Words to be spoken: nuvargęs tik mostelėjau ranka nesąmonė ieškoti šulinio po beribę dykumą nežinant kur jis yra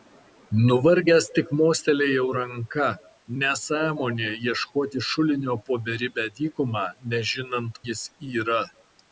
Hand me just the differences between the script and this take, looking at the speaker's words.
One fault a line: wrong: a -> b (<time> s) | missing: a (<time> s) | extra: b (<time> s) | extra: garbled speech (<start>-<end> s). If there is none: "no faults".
missing: kur (7.8 s)